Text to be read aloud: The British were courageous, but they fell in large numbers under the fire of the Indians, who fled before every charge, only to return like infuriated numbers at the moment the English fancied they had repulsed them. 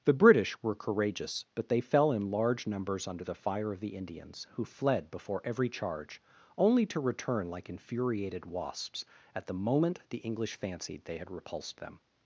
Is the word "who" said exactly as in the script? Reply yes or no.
yes